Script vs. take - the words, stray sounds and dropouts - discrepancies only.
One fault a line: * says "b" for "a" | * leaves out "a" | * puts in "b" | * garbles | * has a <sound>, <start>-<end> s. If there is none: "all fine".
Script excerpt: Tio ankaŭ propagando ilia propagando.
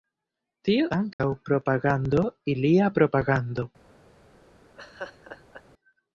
* has a dropout, 1.1-1.2 s
* has a laugh, 4.8-5.6 s